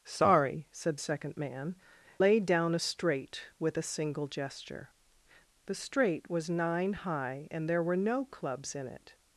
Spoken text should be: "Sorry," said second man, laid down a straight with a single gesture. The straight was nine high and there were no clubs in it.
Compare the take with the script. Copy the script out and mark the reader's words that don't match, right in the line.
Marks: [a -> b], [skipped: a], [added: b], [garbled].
"Sorry," said second man, laid down a straight with a single gesture. The straight was nine high and there were no clubs in it.